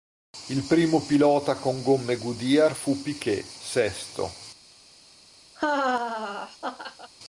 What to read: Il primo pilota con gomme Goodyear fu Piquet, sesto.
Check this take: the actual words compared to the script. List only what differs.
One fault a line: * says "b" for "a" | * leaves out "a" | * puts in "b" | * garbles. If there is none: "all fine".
all fine